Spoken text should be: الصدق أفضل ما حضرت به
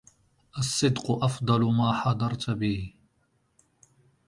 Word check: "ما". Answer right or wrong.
right